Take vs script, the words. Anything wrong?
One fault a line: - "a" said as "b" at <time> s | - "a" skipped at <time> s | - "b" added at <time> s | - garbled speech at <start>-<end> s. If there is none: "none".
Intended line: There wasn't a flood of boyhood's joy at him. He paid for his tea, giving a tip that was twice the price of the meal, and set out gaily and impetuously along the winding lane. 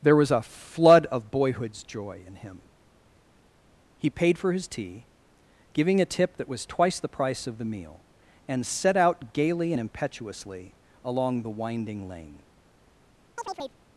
- "wasn't" said as "was" at 0.1 s
- "at" said as "in" at 2.2 s